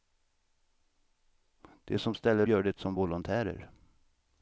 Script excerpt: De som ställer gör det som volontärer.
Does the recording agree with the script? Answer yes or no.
yes